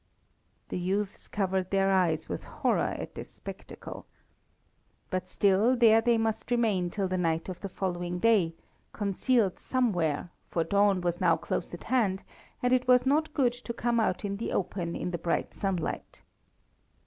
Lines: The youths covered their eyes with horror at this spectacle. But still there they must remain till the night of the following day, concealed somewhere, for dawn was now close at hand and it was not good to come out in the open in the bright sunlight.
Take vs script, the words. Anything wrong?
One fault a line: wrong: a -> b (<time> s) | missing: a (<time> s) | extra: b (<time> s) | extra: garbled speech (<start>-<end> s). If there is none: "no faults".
no faults